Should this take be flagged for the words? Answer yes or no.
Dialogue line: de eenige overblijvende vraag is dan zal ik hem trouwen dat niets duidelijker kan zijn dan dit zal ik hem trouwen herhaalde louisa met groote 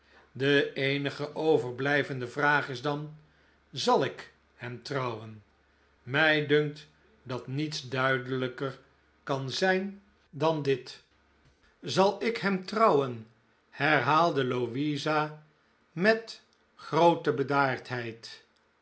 yes